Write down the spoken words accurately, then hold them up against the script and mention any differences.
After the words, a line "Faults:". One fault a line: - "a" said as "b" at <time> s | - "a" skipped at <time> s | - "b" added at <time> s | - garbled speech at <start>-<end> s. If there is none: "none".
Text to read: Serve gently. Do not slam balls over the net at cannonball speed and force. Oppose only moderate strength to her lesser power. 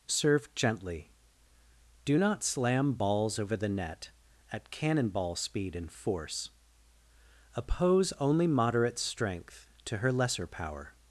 Serve gently. Do not slam balls over the net at cannonball speed and force. Oppose only moderate strength to her lesser power.
Faults:
none